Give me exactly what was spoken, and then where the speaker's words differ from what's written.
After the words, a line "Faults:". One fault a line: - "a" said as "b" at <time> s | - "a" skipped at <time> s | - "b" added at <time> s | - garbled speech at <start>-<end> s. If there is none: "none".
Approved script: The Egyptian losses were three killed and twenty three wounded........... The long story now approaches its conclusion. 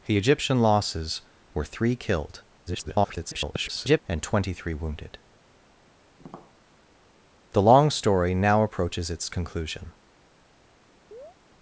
The Egyptian losses were three killed [garbled] and twenty three wounded........... The long story now approaches its conclusion.
Faults:
- garbled speech at 2.7-4.0 s